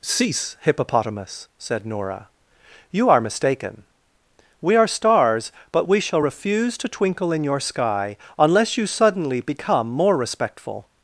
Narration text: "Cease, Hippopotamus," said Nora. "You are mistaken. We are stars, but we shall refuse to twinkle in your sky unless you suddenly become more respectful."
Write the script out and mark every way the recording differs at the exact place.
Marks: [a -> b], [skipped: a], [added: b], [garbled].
"Cease, Hippopotamus," said Nora. "You are mistaken. We are stars, but we shall refuse to twinkle in your sky unless you suddenly become more respectful."